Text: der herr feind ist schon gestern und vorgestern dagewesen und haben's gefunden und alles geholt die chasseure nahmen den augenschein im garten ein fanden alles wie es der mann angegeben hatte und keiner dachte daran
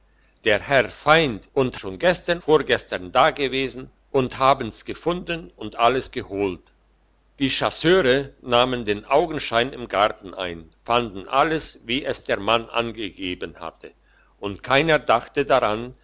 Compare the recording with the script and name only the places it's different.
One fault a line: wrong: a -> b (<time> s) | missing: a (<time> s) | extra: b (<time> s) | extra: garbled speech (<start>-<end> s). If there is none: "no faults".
wrong: ist -> und (1.5 s)
missing: und (2.4 s)